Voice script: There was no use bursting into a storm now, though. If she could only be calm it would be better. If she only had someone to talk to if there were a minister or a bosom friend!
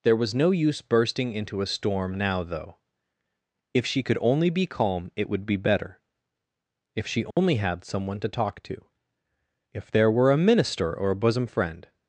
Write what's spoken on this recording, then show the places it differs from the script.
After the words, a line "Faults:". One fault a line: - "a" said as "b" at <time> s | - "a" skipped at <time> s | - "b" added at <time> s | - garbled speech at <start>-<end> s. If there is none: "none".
There was no use bursting into a storm now, though. If she could only be calm it would be better. If she only had someone to talk to if there were a minister or a bosom friend!
Faults:
none